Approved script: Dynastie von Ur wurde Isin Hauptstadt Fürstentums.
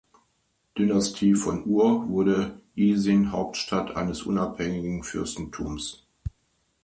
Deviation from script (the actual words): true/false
true